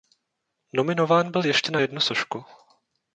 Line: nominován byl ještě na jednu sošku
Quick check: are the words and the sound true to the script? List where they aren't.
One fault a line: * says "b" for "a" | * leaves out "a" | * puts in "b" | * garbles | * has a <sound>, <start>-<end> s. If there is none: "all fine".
all fine